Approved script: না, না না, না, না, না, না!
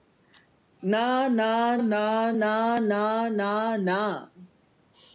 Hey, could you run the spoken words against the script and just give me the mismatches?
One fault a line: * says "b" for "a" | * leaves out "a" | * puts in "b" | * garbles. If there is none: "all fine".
all fine